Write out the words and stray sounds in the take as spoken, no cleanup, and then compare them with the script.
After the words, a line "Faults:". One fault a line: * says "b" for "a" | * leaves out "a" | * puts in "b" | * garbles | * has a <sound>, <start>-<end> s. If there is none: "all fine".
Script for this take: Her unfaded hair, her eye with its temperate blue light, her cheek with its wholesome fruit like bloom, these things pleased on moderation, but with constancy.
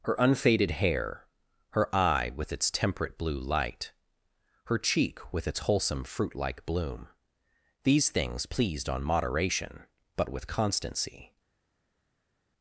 Her unfaded hair, her eye with its temperate blue light, her cheek with its wholesome fruit like bloom, these things pleased on moderation, but with constancy.
Faults:
all fine